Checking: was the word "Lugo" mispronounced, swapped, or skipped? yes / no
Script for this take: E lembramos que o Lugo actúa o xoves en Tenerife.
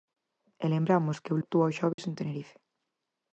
yes